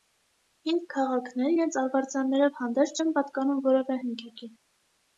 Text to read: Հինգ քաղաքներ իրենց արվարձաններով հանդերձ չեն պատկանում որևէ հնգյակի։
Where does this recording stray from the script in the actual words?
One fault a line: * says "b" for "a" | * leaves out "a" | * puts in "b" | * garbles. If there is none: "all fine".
all fine